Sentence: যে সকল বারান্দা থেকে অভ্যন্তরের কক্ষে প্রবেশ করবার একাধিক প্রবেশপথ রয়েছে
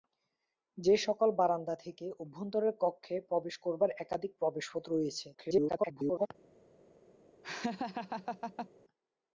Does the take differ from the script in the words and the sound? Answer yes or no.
yes